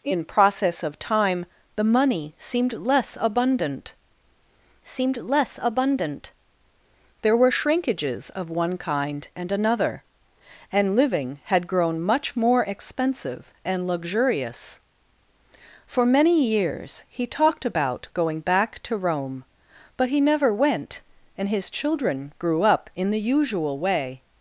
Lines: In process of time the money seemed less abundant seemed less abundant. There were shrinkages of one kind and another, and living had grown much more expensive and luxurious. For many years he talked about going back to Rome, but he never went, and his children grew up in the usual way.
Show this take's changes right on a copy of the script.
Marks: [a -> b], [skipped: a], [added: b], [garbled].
In process of time the money seemed less abundant seemed less abundant. There were shrinkages of one kind and another, and living had grown much more expensive and luxurious. For many years he talked about going back to Rome, but he never went, and his children grew up in the usual way.